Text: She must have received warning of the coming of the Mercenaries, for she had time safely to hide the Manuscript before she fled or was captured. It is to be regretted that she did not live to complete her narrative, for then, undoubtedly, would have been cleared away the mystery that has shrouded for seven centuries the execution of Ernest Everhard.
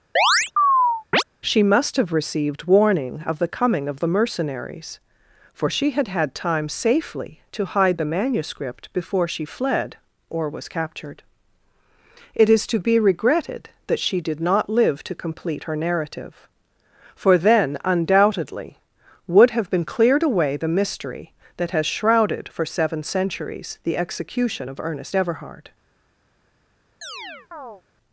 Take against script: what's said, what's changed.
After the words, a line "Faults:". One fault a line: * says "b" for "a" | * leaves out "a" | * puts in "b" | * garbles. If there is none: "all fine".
She must have received warning of the coming of the Mercenaries, for she had had time safely to hide the Manuscript before she fled or was captured. It is to be regretted that she did not live to complete her narrative, for then, undoubtedly, would have been cleared away the mystery that has shrouded for seven centuries the execution of Ernest Everhard.
Faults:
* puts in "had"